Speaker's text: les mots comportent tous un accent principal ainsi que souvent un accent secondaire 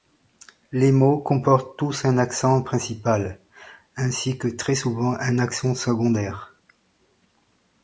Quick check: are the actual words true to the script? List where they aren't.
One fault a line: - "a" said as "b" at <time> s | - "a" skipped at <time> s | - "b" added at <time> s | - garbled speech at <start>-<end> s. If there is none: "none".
- "très" added at 4.5 s